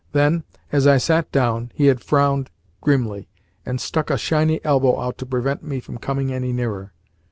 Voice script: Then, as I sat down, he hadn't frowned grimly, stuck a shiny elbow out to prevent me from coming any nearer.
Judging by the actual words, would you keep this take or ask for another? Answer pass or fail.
fail